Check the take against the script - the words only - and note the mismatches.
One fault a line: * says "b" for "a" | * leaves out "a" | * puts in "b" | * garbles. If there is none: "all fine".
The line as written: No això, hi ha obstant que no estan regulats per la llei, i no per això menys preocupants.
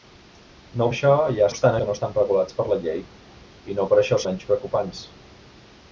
all fine